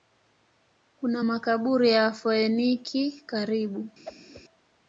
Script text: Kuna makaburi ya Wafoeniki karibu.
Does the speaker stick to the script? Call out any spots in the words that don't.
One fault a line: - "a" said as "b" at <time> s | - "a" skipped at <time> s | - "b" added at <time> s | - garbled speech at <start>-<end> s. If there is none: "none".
none